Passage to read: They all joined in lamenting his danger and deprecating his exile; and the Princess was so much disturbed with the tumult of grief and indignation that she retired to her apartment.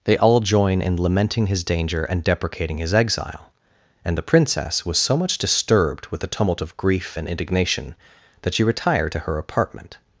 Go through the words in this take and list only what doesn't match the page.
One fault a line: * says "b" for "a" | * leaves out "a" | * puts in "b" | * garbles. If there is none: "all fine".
* says "join" for "joined"